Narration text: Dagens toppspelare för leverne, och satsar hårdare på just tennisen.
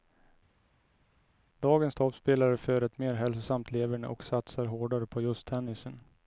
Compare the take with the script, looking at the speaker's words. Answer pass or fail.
fail